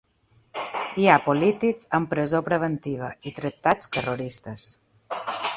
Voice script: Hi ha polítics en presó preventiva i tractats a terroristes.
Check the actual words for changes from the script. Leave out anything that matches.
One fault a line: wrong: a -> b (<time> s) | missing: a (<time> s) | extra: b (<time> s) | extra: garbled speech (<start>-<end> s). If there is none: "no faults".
no faults